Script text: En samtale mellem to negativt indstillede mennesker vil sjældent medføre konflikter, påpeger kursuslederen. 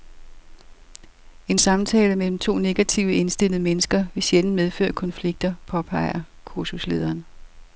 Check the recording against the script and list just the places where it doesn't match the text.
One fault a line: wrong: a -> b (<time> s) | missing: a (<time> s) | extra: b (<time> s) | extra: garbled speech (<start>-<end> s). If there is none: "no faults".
no faults